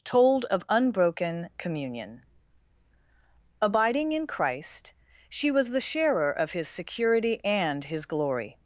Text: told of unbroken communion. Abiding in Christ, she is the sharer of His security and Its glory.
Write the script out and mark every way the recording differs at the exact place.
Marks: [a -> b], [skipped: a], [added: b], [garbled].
told of unbroken communion. Abiding in Christ, she [is -> was] the sharer of His security and [Its -> His] glory.